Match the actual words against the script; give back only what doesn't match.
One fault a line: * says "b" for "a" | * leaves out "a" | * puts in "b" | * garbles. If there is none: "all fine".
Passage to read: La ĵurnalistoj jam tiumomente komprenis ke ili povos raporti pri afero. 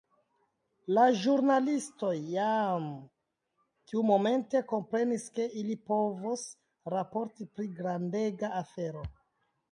* puts in "grandega"